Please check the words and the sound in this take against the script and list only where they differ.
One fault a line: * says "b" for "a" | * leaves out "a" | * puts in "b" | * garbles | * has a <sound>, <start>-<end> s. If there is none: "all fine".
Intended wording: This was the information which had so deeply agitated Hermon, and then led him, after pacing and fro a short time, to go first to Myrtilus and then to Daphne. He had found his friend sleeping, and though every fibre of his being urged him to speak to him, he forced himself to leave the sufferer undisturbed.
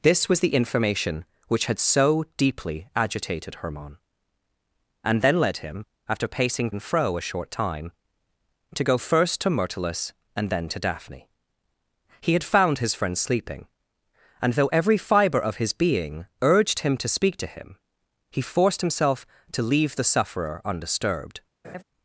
* has a laugh, 21.6-21.8 s